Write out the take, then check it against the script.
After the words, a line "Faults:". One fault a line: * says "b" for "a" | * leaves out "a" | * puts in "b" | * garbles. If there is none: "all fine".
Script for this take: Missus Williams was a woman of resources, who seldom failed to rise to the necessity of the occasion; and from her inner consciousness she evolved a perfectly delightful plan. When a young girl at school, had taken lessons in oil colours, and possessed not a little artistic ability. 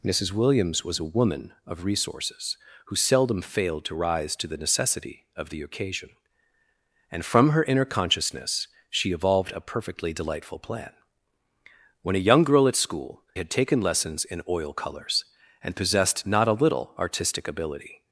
Missus Williams was a woman of resources, who seldom failed to rise to the necessity of the occasion; and from her inner consciousness she evolved a perfectly delightful plan. When a young girl at school, had taken lessons in oil colours, and possessed not a little artistic ability.
Faults:
all fine